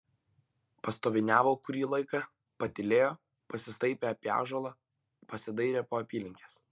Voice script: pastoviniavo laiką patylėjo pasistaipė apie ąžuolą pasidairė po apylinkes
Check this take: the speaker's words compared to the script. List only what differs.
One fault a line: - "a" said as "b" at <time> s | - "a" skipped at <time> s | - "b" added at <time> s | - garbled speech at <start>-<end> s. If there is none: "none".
- "kurį" added at 1.7 s